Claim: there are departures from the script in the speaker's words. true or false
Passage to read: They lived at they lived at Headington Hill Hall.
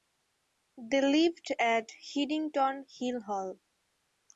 true